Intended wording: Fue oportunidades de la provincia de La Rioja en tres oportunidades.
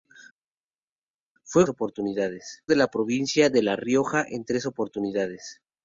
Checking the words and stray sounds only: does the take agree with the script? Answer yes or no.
yes